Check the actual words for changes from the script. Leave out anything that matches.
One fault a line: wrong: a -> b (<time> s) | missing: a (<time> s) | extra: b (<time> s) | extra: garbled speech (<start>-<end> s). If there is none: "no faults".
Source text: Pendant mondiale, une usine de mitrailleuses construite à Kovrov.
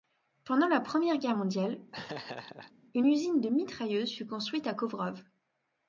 extra: la Première Guerre (0.7 s)
extra: fut (4.1 s)